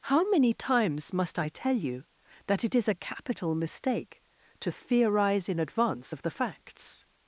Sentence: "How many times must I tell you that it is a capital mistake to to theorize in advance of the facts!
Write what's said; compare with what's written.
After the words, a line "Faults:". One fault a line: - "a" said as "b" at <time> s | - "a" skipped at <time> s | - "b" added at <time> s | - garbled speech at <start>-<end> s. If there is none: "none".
"How many times must I tell you that it is a capital mistake to theorize in advance of the facts!
Faults:
- "to" skipped at 4.7 s